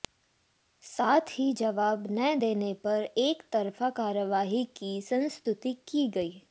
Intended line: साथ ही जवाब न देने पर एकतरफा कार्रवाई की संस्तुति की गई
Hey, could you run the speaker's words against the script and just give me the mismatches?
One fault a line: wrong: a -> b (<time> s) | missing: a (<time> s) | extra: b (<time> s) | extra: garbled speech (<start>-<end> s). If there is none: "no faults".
no faults